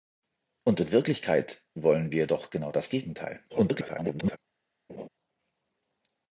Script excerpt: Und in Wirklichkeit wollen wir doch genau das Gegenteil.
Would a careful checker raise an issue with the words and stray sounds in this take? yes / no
yes